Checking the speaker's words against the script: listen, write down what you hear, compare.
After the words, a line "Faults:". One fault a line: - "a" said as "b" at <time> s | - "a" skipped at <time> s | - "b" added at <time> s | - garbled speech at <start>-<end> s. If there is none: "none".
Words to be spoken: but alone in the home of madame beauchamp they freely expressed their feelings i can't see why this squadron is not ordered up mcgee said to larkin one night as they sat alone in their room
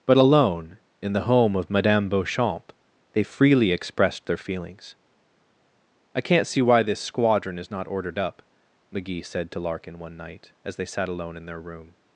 but alone in the home of madame beauchamp they freely expressed their feelings i can't see why this squadron is not ordered up mcgee said to larkin one night as they sat alone in their room
Faults:
none